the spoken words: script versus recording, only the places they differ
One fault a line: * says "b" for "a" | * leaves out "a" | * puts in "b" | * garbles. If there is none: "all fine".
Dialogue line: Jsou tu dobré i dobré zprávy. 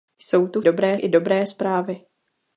all fine